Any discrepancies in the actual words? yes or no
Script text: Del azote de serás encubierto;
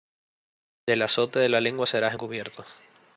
yes